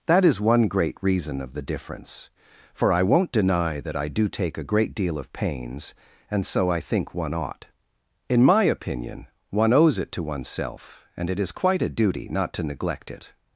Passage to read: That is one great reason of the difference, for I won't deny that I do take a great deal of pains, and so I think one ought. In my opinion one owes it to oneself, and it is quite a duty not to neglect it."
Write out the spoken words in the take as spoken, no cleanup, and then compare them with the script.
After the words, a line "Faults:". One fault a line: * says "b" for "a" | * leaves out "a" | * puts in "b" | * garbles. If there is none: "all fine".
That is one great reason of the difference, for I won't deny that I do take a great deal of pains, and so I think one ought. In my opinion one owes it to oneself, and it is quite a duty not to neglect it."
Faults:
all fine